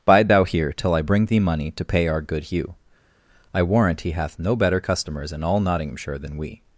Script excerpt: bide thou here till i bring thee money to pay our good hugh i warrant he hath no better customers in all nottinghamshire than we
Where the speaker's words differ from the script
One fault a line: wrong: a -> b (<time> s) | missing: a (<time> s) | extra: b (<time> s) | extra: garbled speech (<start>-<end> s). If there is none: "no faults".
no faults